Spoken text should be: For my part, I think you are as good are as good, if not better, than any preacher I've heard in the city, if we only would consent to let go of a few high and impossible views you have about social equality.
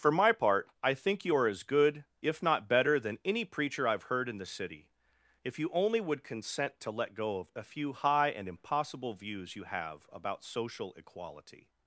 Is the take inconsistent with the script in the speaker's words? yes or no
yes